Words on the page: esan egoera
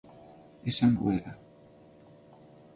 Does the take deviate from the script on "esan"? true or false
false